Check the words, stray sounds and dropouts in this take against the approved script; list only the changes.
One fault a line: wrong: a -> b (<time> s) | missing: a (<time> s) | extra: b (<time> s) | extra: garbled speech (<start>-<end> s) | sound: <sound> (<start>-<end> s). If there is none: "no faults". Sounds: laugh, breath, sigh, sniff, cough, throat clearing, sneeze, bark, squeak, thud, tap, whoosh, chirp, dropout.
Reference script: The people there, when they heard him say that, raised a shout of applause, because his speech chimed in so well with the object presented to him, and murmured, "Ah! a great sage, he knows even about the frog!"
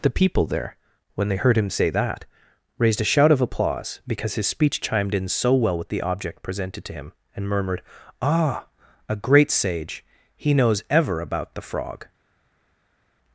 wrong: even -> ever (10.9 s)